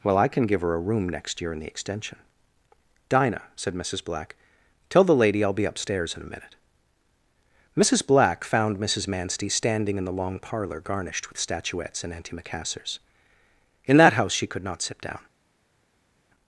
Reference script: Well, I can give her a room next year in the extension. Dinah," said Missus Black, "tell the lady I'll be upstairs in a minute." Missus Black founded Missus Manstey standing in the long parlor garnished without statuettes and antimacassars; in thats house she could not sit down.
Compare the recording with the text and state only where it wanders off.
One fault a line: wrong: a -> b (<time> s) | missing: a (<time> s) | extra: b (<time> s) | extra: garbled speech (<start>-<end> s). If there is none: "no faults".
wrong: founded -> found (8.4 s)
wrong: without -> with (11.3 s)
wrong: thats -> that (14.0 s)